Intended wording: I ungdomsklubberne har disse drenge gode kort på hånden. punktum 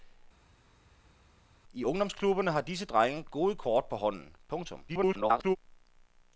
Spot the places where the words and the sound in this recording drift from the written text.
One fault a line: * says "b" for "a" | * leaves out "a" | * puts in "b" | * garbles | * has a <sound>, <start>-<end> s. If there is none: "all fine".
* garbles